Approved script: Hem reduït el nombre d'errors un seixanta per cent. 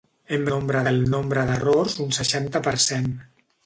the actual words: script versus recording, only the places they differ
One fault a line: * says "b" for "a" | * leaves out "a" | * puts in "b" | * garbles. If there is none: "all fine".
* says "nombre" for "reduït"